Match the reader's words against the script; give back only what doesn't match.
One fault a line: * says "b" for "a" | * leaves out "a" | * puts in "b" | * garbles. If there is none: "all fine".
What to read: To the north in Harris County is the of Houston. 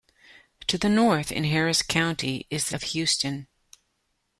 all fine